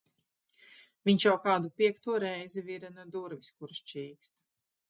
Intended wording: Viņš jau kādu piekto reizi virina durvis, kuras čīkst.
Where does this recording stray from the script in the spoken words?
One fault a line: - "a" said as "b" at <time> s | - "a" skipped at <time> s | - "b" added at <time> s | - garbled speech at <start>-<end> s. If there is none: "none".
none